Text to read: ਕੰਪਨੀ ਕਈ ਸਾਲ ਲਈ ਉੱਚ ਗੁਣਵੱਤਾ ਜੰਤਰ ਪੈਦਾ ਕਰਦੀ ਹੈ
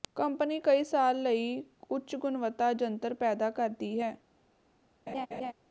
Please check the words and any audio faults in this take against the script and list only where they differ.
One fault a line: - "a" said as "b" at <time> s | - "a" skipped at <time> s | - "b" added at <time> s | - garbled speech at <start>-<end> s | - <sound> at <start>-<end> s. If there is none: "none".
- laugh at 5.1-5.5 s